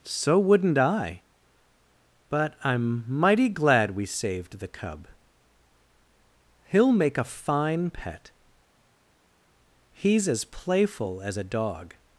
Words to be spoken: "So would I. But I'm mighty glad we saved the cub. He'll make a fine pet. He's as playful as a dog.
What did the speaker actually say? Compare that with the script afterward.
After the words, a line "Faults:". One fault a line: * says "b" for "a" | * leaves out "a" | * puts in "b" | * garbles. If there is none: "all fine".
"So wouldn't I. But I'm mighty glad we saved the cub. He'll make a fine pet. He's as playful as a dog.
Faults:
* says "wouldn't" for "would"